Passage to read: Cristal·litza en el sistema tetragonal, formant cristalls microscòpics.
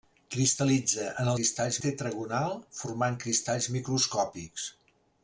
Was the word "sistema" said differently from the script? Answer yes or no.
yes